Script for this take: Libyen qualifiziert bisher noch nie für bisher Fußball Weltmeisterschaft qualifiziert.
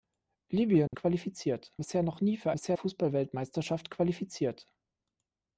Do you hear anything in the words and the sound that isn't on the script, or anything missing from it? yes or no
yes